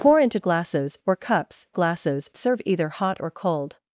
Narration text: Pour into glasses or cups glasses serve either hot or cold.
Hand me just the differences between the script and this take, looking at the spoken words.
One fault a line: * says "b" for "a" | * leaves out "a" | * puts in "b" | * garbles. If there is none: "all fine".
all fine